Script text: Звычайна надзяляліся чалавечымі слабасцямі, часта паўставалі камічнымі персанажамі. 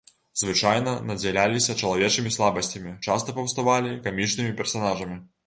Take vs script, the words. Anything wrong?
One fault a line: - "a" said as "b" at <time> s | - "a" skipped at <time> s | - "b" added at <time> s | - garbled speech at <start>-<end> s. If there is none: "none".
none